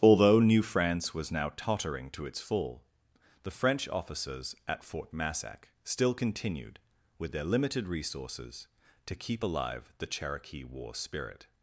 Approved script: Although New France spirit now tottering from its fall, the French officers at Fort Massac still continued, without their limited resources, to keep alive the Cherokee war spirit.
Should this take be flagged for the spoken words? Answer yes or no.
yes